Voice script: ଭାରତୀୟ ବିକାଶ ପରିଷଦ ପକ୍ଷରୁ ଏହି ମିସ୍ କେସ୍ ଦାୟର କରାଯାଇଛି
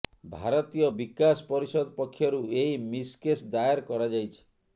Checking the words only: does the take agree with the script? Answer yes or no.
yes